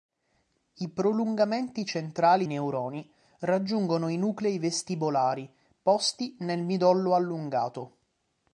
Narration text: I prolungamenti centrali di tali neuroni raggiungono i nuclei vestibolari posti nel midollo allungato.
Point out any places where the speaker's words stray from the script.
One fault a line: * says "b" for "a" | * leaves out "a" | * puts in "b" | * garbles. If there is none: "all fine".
* leaves out "di tali"